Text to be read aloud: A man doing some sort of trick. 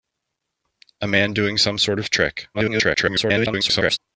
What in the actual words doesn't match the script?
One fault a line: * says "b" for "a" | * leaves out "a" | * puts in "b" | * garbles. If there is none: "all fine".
* garbles